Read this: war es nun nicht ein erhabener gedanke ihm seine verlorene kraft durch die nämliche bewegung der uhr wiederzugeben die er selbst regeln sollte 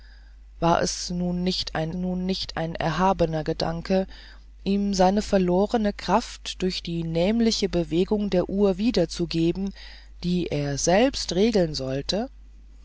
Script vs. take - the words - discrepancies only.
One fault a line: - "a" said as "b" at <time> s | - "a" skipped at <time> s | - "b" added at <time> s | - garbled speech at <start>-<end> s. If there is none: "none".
- "nun nicht ein" added at 1.9 s